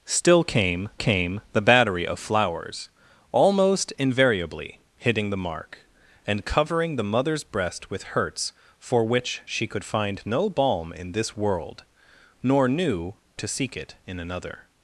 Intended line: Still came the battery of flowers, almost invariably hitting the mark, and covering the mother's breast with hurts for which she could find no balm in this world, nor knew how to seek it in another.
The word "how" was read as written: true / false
false